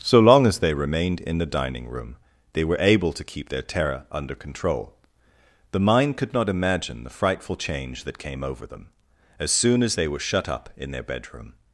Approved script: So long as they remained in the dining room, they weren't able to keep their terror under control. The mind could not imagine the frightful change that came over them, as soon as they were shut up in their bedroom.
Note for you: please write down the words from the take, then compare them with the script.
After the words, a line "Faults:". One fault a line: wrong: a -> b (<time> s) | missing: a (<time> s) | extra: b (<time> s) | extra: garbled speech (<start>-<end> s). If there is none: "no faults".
So long as they remained in the dining room, they were able to keep their terror under control. The mind could not imagine the frightful change that came over them, as soon as they were shut up in their bedroom.
Faults:
wrong: weren't -> were (2.6 s)